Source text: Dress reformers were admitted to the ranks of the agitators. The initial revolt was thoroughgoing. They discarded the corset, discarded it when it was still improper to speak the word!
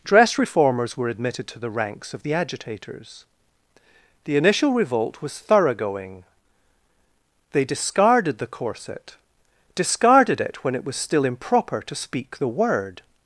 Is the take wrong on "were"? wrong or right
right